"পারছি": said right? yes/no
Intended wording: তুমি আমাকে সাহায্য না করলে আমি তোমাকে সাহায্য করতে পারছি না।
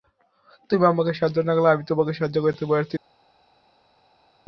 yes